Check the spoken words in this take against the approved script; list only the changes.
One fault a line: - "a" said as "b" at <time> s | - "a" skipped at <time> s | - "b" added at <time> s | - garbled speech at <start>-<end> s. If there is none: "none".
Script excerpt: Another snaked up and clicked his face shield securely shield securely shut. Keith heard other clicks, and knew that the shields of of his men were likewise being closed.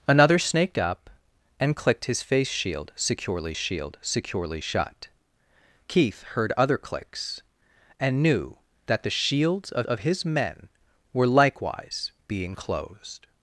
none